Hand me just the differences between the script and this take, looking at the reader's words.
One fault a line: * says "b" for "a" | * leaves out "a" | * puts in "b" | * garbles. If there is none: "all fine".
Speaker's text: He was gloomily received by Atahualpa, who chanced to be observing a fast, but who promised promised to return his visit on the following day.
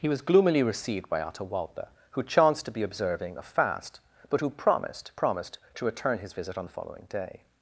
all fine